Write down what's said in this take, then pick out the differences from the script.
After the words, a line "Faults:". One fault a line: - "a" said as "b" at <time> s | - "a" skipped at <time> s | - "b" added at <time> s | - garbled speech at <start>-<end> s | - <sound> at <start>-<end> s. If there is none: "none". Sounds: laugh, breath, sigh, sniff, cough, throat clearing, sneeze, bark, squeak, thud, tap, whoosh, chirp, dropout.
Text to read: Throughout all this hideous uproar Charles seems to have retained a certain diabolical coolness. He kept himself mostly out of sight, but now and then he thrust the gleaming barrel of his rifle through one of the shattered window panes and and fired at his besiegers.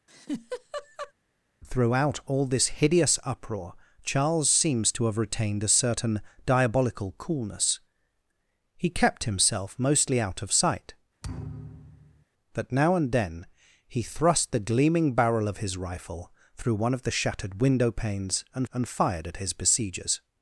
Throughout all this hideous uproar Charles seems to have retained a certain diabolical coolness. He kept himself mostly out of sight, but now and then he thrust the gleaming barrel of his rifle through one of the shattered window panes and and fired at his besiegers.
Faults:
- laugh at 0.1-1.1 s
- thud at 11.2-12.3 s